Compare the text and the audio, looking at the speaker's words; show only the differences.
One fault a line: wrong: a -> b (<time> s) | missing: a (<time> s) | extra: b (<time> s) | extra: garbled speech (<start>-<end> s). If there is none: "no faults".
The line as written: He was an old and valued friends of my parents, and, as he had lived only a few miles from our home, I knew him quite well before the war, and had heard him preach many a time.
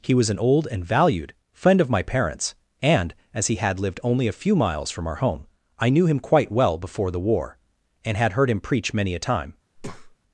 wrong: friends -> friend (1.5 s)